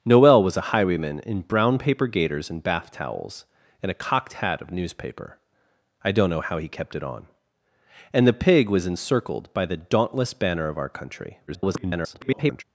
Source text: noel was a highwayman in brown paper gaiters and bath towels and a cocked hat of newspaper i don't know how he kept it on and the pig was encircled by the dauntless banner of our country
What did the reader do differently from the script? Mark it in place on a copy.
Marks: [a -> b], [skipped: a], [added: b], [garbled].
noel was a highwayman in brown paper gaiters and bath towels and a cocked hat of newspaper i don't know how he kept it on and the pig was encircled by the dauntless banner of our country [garbled]